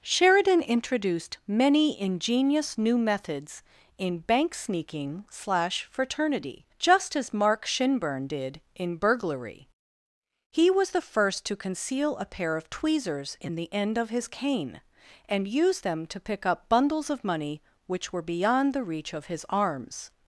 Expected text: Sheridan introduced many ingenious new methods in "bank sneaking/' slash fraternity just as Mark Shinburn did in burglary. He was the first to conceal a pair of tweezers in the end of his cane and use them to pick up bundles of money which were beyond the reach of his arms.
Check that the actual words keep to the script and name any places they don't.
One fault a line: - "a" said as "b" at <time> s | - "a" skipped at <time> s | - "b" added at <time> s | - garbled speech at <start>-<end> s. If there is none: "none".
none